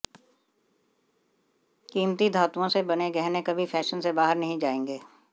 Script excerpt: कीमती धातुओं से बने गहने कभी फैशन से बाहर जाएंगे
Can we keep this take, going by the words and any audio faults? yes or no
no